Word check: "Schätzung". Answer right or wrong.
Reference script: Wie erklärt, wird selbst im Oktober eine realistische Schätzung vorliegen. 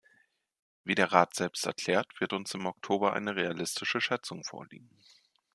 right